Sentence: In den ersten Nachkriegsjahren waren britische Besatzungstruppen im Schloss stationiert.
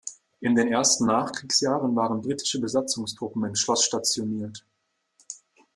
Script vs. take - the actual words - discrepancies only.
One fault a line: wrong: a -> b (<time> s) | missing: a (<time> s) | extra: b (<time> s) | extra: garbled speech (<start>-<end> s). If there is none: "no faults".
no faults